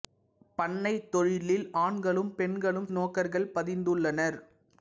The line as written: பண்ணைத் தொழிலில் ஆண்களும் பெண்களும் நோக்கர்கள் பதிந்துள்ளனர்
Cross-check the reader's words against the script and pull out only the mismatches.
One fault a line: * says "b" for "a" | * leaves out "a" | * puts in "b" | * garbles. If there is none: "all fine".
all fine